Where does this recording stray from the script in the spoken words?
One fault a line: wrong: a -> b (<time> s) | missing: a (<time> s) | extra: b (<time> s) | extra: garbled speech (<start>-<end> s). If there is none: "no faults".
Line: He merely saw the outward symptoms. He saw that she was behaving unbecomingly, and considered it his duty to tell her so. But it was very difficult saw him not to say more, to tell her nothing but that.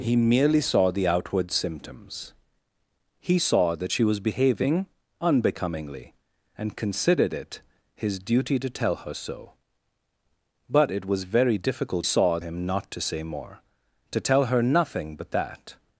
no faults